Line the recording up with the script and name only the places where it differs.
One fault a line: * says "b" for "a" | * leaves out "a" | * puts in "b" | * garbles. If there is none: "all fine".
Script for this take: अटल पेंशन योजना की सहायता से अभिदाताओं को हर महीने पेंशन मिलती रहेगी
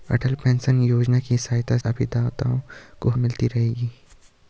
* leaves out "से"
* leaves out "हर महीने पेंशन"